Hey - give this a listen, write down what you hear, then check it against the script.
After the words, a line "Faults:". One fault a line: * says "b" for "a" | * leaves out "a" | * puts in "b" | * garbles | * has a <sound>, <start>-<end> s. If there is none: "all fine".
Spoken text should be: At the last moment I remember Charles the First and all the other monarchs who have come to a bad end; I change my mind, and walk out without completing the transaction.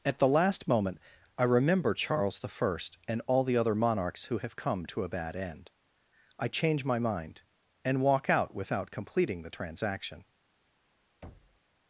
At the last moment I remember Charles the First and all the other monarchs who have come to a bad end; I change my mind, and walk out without completing the transaction.
Faults:
* has a thud, 11.2-11.6 s